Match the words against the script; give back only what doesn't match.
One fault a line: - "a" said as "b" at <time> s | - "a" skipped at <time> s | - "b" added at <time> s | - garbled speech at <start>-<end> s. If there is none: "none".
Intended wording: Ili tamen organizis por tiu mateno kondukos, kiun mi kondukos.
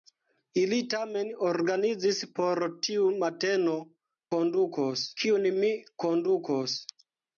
none